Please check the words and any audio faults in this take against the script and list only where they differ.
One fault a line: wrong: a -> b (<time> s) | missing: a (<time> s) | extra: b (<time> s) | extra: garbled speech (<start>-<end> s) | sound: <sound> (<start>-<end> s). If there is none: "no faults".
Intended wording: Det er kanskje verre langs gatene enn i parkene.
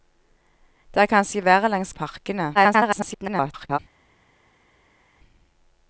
missing: gatene enn (1.9 s)
extra: garbled speech (2.5-3.8 s)